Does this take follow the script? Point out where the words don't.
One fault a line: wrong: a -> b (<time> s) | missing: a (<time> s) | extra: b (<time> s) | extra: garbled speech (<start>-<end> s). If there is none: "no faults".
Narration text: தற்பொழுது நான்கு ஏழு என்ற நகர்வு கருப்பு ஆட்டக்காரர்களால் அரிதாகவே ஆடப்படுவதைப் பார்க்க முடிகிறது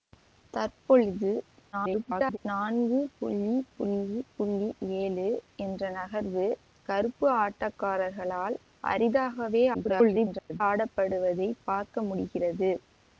extra: garbled speech (1.7-2.4 s)
extra: garbled speech (9.7-10.6 s)